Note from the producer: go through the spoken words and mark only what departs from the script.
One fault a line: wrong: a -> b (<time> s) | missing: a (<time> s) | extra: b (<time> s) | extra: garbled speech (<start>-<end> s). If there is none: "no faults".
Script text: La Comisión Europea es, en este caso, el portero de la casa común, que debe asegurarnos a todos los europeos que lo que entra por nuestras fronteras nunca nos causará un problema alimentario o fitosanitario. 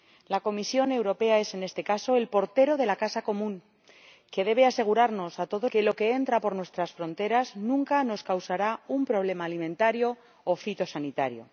missing: los europeos (5.7 s)